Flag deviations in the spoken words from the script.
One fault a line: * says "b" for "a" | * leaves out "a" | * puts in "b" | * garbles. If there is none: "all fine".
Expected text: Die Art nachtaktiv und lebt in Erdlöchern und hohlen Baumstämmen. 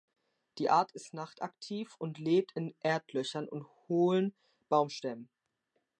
* puts in "ist"